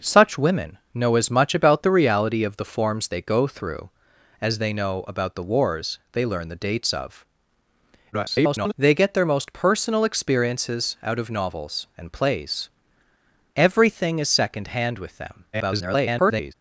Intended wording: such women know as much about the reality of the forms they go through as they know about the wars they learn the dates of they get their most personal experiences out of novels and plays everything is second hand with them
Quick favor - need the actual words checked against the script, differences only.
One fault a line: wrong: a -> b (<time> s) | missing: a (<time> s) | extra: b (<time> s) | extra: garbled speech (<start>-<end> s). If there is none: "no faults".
extra: garbled speech (8.1-8.7 s)
extra: garbled speech (15.5-16.5 s)